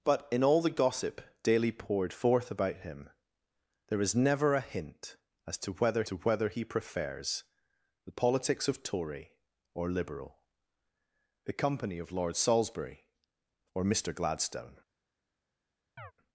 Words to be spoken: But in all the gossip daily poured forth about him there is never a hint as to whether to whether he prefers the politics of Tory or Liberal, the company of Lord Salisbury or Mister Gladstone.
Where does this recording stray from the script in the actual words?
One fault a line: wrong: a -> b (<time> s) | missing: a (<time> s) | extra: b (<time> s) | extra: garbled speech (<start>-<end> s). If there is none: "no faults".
no faults